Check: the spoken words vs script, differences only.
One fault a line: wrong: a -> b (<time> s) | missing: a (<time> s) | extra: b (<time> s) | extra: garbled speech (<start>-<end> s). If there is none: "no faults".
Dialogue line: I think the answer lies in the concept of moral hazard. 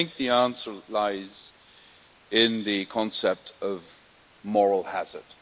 no faults